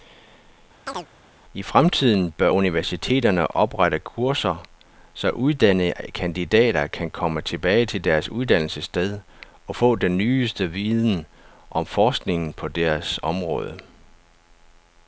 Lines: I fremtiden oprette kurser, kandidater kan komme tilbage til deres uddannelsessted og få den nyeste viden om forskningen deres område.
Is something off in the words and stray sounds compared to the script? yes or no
yes